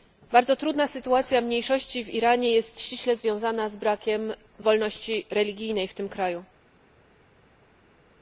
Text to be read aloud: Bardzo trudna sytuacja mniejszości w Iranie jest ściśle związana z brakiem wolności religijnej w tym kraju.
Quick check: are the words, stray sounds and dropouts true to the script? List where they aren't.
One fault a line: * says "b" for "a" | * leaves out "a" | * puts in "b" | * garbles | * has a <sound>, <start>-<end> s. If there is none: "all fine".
all fine